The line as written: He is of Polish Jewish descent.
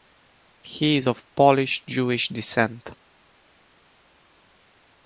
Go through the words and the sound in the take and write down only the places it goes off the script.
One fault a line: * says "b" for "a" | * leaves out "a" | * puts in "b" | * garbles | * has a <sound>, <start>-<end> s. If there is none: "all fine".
all fine